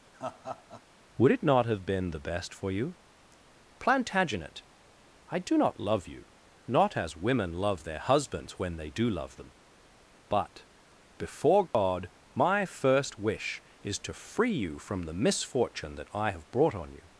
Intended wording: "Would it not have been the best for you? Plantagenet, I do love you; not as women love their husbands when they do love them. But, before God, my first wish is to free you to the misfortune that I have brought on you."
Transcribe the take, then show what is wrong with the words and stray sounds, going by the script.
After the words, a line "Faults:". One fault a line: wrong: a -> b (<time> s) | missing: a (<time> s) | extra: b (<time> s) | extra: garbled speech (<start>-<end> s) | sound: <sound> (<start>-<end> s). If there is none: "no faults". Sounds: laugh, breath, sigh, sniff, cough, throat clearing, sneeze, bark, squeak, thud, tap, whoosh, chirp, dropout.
"Would it not have been the best for you? Plantagenet, I do not love you; not as women love their husbands when they do love them. But, before God, my first wish is to free you from the misfortune that I have brought on you."
Faults:
sound: laugh (0.1-0.8 s)
extra: not (5.6 s)
sound: dropout (11.7-11.7 s)
wrong: to -> from (14.8 s)